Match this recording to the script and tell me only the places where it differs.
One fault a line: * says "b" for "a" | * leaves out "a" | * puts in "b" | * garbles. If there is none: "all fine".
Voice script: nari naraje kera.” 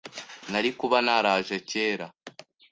* puts in "kuba"